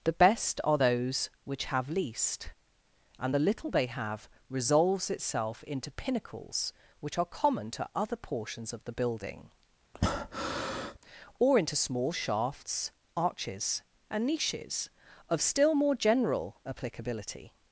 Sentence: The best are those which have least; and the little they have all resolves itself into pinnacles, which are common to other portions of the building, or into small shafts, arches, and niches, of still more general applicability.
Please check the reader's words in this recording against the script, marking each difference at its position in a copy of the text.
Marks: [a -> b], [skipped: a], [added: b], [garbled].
The best are those which have least; and the little they have [skipped: all] resolves itself into pinnacles, which are common to other portions of the building, or into small shafts, arches, and niches, of still more general applicability.